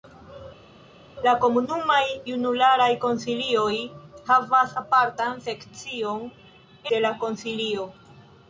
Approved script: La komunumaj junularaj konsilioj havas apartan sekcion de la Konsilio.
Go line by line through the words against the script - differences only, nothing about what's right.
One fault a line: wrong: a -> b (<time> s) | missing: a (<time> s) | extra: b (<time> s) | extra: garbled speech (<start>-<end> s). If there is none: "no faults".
no faults